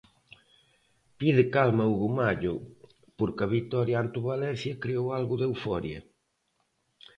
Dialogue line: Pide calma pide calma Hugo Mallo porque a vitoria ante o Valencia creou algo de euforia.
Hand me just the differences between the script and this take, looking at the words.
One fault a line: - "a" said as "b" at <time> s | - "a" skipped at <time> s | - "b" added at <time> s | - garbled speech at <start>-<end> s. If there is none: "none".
- "pide calma" skipped at 1.8 s